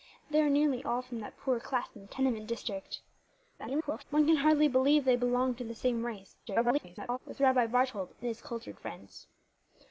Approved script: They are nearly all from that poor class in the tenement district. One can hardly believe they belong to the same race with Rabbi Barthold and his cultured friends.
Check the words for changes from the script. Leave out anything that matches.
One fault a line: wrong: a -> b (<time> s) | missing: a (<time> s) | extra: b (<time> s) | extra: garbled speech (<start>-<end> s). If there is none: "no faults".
extra: garbled speech (3.6-4.0 s)
extra: garbled speech (6.5-7.2 s)